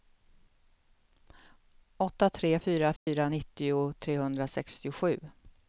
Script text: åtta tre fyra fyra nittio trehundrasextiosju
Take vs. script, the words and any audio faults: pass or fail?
fail